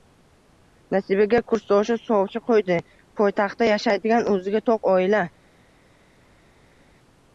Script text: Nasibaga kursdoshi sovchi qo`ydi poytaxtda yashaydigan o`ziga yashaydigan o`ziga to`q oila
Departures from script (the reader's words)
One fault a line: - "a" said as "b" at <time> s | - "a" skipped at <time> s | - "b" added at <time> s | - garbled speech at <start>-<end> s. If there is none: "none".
- "yashaydigan o`ziga" skipped at 4.7 s